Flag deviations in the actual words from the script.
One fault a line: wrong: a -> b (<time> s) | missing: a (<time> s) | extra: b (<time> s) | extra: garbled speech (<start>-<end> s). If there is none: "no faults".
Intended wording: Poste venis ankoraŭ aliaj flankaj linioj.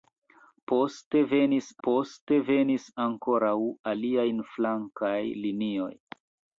extra: poste venis (1.8 s)